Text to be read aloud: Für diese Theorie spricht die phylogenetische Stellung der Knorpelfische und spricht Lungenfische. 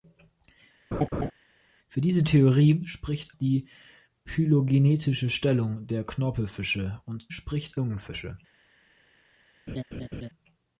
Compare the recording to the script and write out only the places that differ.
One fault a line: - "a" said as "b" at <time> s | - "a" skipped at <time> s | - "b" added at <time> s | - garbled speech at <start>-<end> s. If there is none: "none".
none